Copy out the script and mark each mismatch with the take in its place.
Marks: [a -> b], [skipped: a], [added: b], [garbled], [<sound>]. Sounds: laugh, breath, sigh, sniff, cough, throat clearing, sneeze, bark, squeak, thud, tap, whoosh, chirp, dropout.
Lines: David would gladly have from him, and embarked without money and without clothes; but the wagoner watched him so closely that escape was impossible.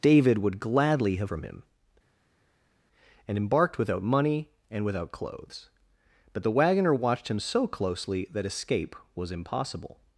David would gladly have from him, and embarked without money and without clothes; but the wagoner watched him so closely that escape was impossible.